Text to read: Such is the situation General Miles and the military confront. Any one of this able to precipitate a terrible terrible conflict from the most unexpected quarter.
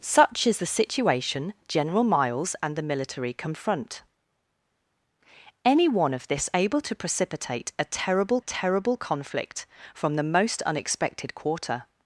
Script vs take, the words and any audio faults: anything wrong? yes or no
no